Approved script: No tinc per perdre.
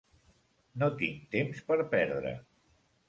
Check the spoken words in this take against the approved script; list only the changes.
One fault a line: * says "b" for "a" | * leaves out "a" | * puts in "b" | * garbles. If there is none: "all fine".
* puts in "temps"